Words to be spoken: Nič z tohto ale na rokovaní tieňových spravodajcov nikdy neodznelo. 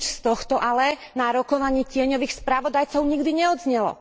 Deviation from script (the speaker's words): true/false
false